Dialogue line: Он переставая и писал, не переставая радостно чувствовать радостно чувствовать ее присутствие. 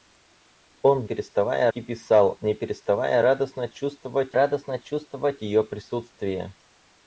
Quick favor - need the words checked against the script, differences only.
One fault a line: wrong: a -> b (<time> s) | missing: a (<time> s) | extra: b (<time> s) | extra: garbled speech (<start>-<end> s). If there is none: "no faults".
no faults